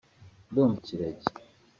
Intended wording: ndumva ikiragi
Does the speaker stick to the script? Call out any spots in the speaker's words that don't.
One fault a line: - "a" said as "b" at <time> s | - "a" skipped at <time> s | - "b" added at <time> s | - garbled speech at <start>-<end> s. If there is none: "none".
none